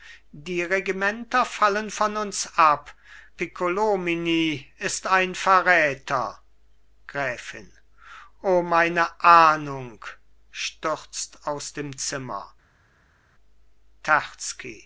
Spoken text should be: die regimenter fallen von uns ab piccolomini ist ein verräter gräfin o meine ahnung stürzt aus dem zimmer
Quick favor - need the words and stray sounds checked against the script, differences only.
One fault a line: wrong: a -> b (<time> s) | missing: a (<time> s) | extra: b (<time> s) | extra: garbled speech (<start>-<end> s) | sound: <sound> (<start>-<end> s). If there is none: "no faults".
no faults